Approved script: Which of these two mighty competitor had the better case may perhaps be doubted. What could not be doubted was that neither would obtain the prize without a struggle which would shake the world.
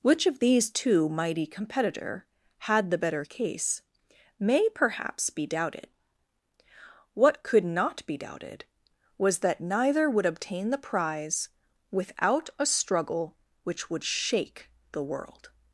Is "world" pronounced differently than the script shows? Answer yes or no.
no